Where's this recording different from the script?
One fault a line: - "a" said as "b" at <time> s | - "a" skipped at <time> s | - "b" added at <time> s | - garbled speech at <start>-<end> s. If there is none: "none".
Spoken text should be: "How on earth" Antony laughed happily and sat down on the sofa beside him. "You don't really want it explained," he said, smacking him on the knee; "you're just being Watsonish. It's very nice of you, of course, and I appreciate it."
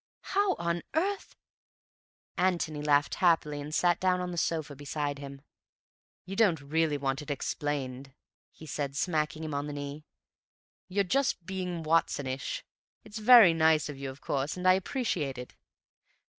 none